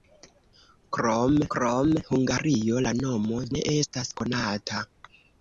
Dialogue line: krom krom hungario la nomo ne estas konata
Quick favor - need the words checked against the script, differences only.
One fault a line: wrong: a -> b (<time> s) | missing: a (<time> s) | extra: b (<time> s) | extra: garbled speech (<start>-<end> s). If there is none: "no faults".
no faults